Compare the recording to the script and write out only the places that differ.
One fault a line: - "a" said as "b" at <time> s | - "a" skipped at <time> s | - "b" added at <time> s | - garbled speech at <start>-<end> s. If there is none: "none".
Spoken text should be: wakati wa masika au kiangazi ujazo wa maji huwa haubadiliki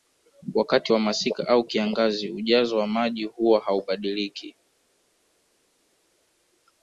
none